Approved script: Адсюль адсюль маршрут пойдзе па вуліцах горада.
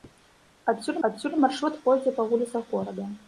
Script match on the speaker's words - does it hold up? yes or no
yes